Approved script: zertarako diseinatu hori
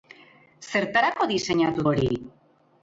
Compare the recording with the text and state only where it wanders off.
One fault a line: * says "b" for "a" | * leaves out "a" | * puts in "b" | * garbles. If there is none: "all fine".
all fine